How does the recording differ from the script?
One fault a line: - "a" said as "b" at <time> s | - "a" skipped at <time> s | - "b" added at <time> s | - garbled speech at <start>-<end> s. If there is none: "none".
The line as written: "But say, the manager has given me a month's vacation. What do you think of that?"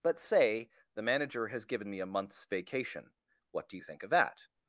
none